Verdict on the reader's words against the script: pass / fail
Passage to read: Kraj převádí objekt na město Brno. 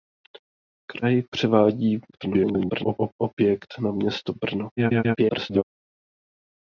fail